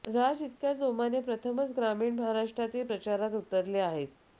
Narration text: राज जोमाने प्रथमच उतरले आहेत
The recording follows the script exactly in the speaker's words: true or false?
false